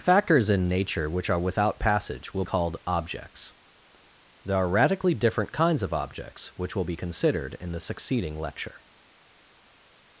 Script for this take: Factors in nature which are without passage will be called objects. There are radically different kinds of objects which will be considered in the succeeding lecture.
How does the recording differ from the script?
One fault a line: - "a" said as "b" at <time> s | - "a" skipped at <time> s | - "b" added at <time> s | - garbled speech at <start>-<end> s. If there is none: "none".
- "be" skipped at 2.4 s